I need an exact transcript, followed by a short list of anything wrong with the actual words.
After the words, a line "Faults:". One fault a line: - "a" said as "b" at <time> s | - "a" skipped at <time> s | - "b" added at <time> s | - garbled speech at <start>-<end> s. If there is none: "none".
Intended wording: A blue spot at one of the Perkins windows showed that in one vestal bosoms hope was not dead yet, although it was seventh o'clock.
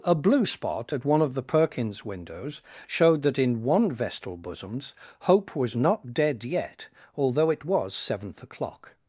A blue spot at one of the Perkins windows showed that in one vestal bosoms hope was not dead yet, although it was seventh o'clock.
Faults:
none